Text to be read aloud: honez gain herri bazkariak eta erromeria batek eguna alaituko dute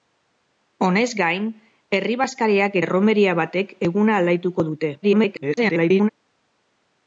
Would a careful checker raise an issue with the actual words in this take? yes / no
yes